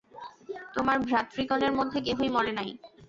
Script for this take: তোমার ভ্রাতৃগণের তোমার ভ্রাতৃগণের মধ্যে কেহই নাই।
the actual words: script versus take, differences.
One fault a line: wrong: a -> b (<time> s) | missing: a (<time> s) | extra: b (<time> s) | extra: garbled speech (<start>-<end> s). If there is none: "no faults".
missing: তোমার ভ্রাতৃগণের (1.7 s)
extra: মরে (2.4 s)